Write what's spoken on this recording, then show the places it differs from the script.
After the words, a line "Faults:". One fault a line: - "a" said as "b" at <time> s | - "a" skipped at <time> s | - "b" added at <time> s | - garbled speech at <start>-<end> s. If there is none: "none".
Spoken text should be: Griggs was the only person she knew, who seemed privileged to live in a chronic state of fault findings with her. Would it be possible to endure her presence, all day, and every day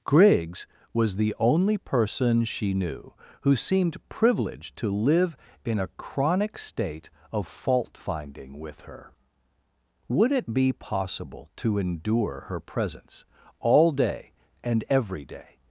Griggs was the only person she knew, who seemed privileged to live in a chronic state of fault finding with her. Would it be possible to endure her presence, all day, and every day
Faults:
- "findings" said as "finding" at 8.0 s